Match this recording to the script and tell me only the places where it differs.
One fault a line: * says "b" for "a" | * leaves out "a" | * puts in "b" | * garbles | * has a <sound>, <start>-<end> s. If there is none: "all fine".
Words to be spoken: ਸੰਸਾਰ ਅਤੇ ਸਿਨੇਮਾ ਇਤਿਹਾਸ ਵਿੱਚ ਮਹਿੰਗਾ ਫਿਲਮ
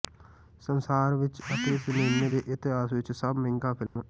* puts in "ਵਿੱਚ"
* puts in "ਦੇ"
* puts in "ਸਭ"
* has a dropout, 3.9-4.0 s